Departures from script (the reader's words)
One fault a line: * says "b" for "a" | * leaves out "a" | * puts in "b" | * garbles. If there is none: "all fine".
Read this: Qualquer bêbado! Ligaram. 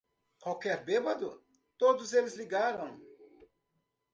* puts in "Todos eles"